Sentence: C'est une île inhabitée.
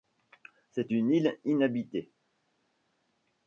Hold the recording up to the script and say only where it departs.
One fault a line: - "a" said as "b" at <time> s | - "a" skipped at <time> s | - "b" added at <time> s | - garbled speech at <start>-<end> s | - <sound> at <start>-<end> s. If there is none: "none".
none